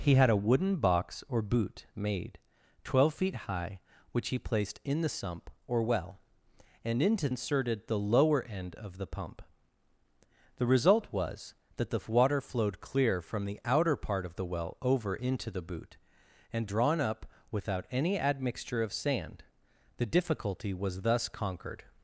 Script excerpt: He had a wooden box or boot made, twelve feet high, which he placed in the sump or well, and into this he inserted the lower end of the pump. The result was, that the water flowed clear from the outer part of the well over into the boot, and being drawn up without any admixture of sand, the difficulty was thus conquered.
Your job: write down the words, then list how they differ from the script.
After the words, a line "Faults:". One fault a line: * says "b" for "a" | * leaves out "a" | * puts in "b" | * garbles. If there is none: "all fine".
He had a wooden box or boot made, twelve feet high, which he placed in the sump or well, and into inserted the lower end of the pump. The result was, that the water flowed clear from the outer part of the well over into the boot, and drawn up without any admixture of sand, the difficulty was thus conquered.
Faults:
* leaves out "this he"
* leaves out "being"